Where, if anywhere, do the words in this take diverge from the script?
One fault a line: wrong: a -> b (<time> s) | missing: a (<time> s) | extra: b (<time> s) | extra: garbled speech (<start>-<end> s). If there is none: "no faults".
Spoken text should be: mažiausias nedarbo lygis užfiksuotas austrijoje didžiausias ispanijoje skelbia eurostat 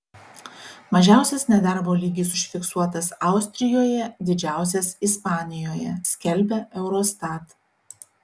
no faults